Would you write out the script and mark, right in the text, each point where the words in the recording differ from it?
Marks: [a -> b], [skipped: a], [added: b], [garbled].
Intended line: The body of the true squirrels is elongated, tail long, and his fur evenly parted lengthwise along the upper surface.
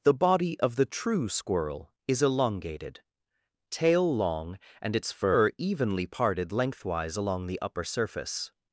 The body of the true [squirrels -> squirrel] is elongated, tail long, and [his -> its] fur evenly parted lengthwise along the upper surface.